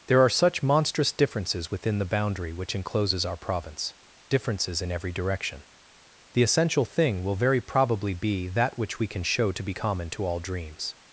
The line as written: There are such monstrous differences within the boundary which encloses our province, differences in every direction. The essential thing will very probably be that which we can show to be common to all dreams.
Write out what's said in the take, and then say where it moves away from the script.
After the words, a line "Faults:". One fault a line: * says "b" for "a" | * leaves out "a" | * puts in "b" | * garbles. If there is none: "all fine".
There are such monstrous differences within the boundary which encloses our province, differences in every direction. The essential thing will very probably be that which we can show to be common to all dreams.
Faults:
all fine